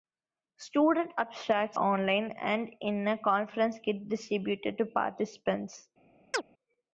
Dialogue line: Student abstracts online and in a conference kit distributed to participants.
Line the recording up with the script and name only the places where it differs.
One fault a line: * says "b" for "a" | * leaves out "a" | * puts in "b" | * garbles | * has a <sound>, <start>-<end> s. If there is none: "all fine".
* has a chirp, 6.3-6.4 s